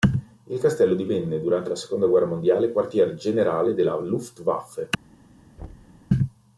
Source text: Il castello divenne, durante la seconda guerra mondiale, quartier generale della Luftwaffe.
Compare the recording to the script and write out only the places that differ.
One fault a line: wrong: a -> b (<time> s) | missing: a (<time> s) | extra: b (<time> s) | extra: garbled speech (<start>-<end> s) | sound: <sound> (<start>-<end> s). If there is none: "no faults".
sound: thud (5.6-6.0 s)